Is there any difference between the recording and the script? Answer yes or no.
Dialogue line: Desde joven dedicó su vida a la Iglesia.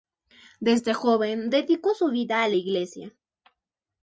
no